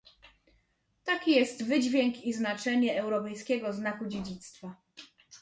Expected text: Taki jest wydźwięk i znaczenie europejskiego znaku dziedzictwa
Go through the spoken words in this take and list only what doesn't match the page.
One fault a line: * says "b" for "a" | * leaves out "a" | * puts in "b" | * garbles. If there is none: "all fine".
all fine